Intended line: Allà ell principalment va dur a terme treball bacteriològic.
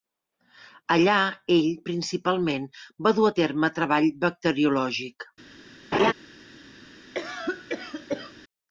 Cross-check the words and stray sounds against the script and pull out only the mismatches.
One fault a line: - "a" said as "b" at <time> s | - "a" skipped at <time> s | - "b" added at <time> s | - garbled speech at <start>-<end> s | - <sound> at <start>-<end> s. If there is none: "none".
- laugh at 5.9-6.1 s
- cough at 7.1-8.3 s